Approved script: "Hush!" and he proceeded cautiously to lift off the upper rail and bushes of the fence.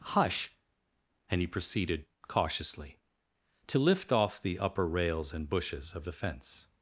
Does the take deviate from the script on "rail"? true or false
true